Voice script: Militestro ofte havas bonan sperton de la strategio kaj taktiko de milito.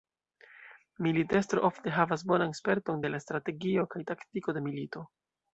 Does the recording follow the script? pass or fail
pass